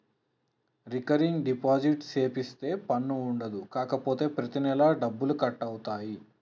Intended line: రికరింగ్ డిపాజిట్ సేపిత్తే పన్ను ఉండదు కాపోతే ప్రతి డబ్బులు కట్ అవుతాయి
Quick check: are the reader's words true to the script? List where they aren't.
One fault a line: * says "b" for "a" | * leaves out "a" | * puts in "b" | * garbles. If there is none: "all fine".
* puts in "నెలా"